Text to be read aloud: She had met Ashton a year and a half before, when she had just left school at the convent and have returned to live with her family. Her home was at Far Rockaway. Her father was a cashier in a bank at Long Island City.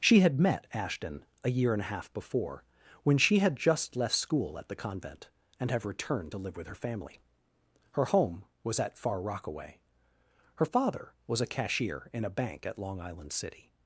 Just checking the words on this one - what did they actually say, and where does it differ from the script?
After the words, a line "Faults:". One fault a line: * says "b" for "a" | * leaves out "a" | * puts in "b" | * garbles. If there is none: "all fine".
She had met Ashton a year and a half before, when she had just left school at the convent and have returned to live with her family. Her home was at Far Rockaway. Her father was a cashier in a bank at Long Island City.
Faults:
all fine